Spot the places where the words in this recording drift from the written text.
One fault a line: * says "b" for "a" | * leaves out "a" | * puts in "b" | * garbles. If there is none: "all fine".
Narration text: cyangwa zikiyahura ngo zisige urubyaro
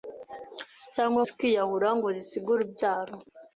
all fine